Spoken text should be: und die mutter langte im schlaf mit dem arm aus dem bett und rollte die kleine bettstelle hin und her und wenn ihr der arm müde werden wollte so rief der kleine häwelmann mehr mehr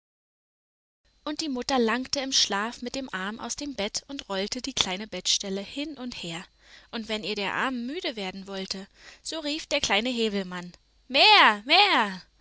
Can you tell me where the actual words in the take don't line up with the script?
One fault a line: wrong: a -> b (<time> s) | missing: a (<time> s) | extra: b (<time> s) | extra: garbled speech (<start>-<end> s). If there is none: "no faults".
no faults